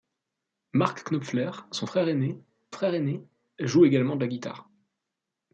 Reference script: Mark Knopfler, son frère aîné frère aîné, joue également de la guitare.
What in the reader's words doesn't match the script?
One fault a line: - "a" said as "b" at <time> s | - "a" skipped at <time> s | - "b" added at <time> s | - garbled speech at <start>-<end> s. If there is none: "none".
none